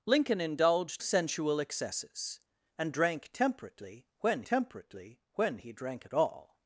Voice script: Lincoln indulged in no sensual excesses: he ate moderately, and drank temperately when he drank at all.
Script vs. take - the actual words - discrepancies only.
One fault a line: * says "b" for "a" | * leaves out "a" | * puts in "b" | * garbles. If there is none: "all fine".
* leaves out "in no"
* says "and drank temperately when" for "he ate moderately and drank"